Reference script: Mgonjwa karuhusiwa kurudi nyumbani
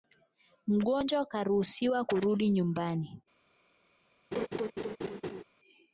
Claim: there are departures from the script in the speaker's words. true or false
false